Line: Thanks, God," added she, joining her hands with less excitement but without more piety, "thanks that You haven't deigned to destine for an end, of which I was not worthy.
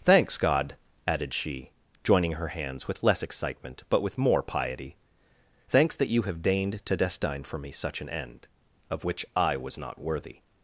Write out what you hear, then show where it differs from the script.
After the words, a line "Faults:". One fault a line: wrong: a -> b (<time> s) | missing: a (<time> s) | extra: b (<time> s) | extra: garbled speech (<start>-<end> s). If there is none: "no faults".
Thanks, God," added she, joining her hands with less excitement but with more piety, "thanks that You have deigned to destine for me such an end, of which I was not worthy.
Faults:
wrong: without -> with (4.0 s)
wrong: haven't -> have (6.2 s)
extra: me such (7.6 s)